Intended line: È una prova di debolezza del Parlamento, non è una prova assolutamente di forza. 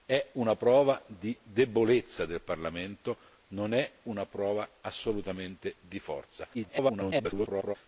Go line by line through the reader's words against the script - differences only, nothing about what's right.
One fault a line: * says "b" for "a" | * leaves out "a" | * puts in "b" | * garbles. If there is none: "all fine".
* garbles